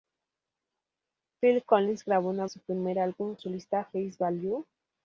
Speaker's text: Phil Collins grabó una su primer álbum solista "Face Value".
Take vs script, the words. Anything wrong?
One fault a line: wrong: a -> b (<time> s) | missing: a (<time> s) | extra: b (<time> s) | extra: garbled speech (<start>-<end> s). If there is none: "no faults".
no faults